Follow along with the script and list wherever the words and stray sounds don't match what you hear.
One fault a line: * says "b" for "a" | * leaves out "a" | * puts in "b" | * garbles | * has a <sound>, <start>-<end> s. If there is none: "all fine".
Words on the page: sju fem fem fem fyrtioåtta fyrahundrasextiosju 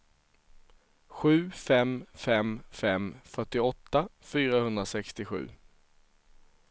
all fine